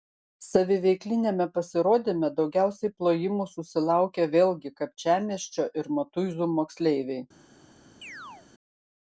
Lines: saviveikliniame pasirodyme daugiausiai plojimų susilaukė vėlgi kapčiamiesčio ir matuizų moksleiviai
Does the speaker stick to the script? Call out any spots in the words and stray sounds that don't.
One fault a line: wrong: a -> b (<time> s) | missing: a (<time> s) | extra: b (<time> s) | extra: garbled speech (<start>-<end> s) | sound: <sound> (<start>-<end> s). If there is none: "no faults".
sound: chirp (8.0-8.5 s)